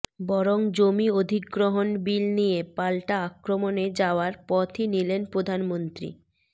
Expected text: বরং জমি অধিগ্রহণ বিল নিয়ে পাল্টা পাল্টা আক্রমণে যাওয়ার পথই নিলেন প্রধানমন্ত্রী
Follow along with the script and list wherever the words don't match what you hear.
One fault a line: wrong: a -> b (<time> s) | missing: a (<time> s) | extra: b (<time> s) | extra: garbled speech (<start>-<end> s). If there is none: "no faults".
missing: পাল্টা (3.1 s)